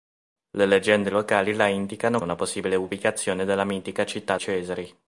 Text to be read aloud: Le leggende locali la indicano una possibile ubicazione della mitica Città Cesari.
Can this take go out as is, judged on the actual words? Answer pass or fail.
pass